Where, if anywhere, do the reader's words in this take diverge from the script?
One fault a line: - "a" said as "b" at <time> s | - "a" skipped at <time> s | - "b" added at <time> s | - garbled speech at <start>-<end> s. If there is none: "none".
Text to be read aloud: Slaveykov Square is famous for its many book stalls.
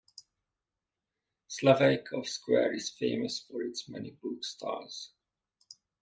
none